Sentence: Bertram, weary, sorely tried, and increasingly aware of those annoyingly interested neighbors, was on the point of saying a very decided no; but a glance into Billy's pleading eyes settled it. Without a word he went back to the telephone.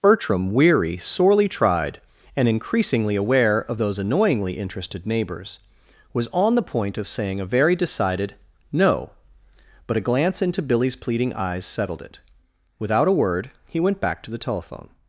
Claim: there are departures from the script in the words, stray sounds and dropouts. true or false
false